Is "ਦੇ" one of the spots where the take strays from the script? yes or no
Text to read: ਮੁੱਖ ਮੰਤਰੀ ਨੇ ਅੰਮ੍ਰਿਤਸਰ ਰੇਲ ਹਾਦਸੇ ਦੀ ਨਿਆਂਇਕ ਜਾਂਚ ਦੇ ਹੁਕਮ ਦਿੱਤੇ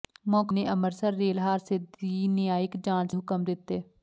yes